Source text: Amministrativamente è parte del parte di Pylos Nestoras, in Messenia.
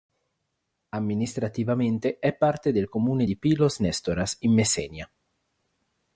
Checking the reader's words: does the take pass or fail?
fail